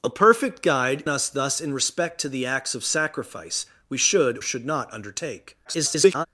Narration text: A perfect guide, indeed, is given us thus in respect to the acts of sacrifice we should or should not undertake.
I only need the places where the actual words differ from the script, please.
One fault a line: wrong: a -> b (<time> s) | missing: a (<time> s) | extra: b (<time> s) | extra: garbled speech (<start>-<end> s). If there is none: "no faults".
missing: indeed is given (1.0 s)
missing: or (4.4 s)
extra: garbled speech (5.6-6.3 s)